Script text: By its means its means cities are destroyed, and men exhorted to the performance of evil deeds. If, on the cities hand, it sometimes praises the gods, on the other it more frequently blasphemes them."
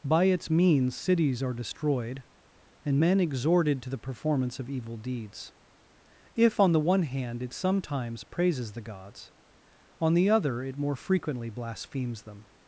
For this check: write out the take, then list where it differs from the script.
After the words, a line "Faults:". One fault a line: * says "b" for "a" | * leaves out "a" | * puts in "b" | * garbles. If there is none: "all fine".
By its means cities are destroyed, and men exhorted to the performance of evil deeds. If, on the one hand, it sometimes praises the gods, on the other it more frequently blasphemes them."
Faults:
* leaves out "its means"
* says "one" for "cities"